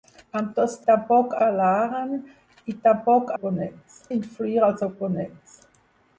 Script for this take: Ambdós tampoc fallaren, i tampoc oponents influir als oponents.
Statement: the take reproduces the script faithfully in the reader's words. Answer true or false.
true